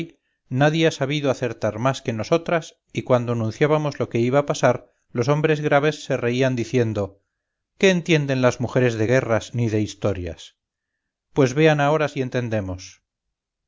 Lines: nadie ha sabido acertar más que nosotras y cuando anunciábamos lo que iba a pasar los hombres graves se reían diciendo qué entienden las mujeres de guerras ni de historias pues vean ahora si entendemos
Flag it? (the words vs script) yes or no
no